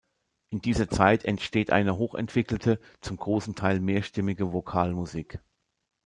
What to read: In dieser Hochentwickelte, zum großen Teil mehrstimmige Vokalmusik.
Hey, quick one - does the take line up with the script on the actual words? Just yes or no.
no